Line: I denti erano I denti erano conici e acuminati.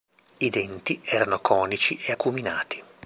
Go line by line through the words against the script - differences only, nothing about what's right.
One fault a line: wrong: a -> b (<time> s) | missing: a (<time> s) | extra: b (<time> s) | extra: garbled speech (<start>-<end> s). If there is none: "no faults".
missing: I denti erano (1.4 s)